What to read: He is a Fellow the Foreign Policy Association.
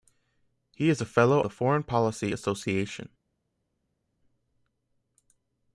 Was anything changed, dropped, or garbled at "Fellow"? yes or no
no